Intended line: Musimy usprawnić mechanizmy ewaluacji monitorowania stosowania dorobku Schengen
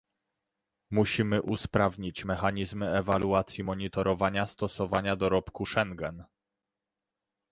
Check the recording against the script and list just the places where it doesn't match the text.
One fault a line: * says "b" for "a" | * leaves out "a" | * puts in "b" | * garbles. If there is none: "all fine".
all fine